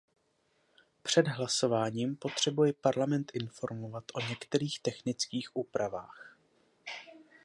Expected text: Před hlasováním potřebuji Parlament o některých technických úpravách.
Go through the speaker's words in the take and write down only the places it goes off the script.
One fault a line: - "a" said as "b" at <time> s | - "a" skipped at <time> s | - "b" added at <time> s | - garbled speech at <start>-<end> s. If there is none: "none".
- "informovat" added at 3.3 s